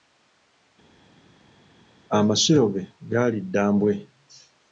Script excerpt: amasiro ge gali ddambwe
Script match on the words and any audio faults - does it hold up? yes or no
yes